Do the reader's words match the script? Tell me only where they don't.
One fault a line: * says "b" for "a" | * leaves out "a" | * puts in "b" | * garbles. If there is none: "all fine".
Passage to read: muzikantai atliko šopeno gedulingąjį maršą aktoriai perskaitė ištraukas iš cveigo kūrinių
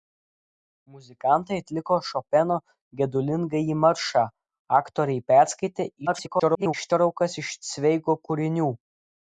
* garbles